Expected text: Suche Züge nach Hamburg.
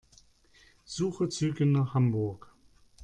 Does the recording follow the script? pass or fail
pass